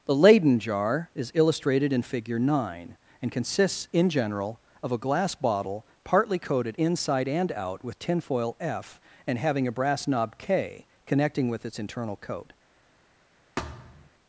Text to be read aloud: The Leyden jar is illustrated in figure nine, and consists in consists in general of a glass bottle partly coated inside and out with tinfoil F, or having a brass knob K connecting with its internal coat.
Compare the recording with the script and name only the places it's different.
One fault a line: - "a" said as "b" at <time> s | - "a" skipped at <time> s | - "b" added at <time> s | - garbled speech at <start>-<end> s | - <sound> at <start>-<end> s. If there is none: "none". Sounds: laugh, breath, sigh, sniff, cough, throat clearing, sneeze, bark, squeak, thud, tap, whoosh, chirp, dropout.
- "consists in" skipped at 4.1 s
- "or" said as "and" at 9.3 s
- thud at 13.6-14.1 s